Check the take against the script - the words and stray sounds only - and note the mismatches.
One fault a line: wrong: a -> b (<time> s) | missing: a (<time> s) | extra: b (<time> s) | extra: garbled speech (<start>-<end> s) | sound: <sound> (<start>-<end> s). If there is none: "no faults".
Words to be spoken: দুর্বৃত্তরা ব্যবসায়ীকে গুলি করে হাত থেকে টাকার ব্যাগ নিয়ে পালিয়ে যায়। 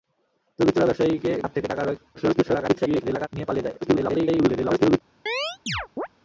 missing: গুলি করে (1.3 s)
extra: garbled speech (2.1-3.3 s)
extra: garbled speech (3.8-5.0 s)
sound: chirp (5.3-6.1 s)